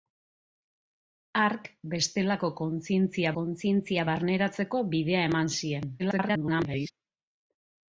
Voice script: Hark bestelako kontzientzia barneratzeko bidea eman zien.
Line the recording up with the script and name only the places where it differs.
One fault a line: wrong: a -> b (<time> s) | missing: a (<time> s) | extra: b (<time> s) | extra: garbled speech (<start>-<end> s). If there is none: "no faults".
extra: kontzientzia (3.4 s)
extra: garbled speech (6.0-6.9 s)